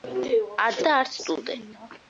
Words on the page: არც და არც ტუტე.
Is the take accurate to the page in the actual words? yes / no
yes